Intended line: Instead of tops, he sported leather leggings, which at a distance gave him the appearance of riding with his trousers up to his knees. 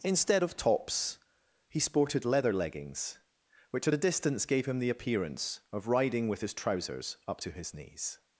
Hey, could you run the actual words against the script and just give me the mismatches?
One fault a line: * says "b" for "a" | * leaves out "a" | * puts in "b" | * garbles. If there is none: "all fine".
all fine